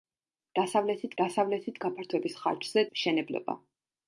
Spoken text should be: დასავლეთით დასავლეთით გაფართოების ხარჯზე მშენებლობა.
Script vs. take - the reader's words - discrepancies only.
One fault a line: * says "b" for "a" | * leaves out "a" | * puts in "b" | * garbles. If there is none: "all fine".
all fine